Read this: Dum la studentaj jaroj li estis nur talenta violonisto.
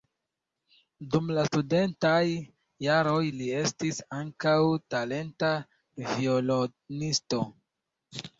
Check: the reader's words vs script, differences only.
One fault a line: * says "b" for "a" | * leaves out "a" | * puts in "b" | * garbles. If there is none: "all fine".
* says "ankaŭ" for "nur"